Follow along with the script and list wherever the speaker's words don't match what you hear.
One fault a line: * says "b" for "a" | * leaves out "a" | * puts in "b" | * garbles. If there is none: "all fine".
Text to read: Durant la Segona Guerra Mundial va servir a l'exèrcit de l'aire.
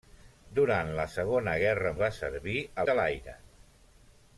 * leaves out "Mundial"
* leaves out "l'exèrcit"